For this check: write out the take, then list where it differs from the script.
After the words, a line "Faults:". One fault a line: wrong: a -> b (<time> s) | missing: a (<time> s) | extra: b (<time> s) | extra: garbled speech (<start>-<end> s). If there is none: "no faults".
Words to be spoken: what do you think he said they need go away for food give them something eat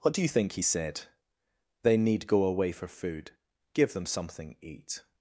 what do you think he said they need go away for food give them something eat
Faults:
no faults